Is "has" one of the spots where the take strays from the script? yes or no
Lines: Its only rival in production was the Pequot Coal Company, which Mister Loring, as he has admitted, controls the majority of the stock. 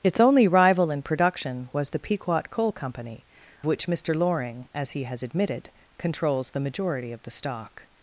no